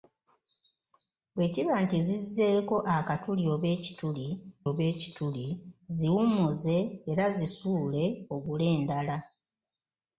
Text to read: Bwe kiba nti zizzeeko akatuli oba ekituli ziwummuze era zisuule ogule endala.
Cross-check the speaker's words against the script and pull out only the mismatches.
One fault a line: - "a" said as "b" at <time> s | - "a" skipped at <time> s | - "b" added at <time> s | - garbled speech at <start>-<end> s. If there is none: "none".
- "oba ekituli" added at 4.7 s